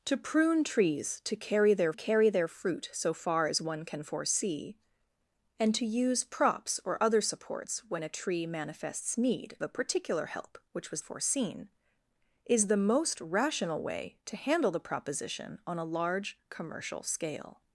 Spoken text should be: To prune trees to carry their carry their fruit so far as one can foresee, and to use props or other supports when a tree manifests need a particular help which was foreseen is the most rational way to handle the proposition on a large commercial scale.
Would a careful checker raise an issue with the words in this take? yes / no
no